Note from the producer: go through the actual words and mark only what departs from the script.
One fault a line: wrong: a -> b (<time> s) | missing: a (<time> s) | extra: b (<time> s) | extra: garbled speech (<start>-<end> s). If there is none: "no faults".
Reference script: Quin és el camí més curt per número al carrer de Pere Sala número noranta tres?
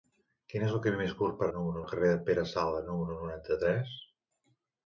no faults